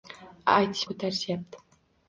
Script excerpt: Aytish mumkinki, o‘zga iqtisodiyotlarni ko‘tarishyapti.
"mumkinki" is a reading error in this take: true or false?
true